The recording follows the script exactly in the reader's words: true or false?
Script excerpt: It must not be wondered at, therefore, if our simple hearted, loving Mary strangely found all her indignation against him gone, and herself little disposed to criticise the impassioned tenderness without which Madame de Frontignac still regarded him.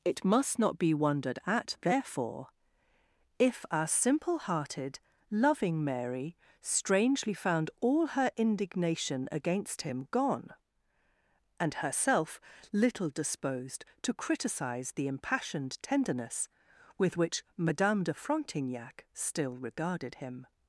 false